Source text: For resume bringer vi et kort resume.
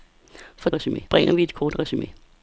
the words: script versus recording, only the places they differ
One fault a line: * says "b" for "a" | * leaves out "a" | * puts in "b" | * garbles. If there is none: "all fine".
all fine